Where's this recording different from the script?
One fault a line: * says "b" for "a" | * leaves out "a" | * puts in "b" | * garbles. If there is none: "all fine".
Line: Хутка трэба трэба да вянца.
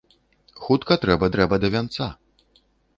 all fine